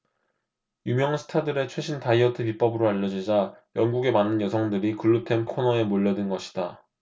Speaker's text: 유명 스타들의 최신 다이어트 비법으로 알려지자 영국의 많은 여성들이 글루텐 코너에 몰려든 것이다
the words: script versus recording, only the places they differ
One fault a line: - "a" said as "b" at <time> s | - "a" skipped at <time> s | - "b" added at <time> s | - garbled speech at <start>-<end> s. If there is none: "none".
none